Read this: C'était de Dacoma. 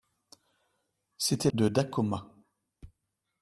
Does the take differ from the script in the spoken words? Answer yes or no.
no